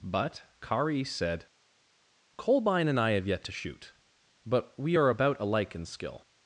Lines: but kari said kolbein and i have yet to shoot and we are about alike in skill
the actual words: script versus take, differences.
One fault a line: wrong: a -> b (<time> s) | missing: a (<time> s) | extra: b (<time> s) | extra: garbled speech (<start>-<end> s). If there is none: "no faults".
wrong: and -> but (4.5 s)